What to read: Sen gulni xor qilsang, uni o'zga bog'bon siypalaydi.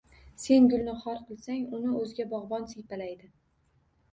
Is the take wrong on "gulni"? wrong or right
right